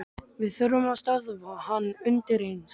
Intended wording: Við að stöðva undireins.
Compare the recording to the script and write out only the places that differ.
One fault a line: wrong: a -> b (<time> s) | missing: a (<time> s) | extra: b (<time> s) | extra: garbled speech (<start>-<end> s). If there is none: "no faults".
extra: þurfum (0.6 s)
extra: hann (1.7 s)